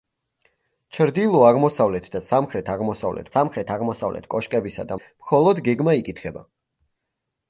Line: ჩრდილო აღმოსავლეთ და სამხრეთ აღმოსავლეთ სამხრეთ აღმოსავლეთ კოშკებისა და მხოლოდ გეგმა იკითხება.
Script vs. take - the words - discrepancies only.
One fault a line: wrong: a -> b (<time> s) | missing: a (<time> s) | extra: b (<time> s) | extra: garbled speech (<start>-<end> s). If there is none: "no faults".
no faults